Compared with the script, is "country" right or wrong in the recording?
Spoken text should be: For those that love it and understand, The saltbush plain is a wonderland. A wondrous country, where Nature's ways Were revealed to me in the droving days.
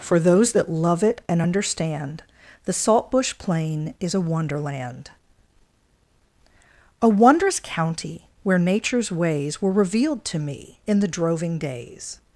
wrong